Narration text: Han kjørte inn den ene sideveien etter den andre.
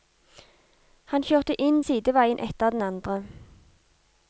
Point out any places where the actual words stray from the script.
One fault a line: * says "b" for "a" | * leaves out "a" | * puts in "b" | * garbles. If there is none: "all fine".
* leaves out "den ene"